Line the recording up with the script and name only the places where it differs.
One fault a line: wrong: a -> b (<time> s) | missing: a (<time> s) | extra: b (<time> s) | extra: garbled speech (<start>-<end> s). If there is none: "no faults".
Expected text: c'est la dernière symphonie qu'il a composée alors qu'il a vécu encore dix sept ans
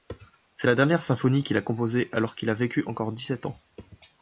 no faults